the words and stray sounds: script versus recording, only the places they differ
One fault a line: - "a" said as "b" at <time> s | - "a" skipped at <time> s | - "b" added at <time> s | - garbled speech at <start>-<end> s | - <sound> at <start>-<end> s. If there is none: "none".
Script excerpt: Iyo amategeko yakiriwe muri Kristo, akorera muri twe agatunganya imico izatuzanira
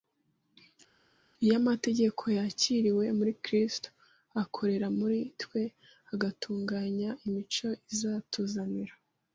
none